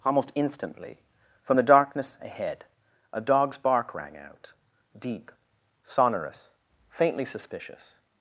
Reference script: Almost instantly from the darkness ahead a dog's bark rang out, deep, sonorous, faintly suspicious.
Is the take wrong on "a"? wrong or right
right